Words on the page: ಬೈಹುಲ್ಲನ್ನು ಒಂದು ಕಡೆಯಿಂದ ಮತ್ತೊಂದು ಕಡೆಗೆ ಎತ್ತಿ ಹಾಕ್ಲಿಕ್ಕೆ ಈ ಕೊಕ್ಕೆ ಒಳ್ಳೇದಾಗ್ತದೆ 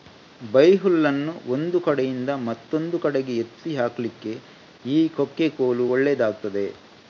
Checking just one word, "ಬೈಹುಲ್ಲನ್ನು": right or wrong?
right